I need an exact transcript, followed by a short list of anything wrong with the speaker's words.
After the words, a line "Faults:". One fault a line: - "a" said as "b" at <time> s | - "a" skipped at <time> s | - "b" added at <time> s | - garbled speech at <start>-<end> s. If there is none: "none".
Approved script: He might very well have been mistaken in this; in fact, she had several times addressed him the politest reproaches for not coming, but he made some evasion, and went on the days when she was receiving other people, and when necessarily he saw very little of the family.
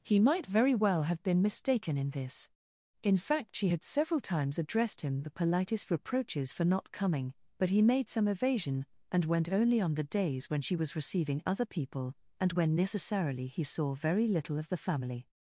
He might very well have been mistaken in this; in fact, she had several times addressed him the politest reproaches for not coming, but he made some evasion, and went only on the days when she was receiving other people, and when necessarily he saw very little of the family.
Faults:
- "only" added at 9.5 s